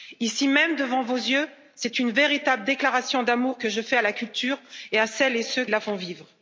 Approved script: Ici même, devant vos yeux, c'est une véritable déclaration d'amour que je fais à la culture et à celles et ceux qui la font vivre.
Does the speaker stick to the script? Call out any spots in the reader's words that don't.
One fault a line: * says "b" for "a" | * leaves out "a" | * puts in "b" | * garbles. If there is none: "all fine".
* leaves out "qui"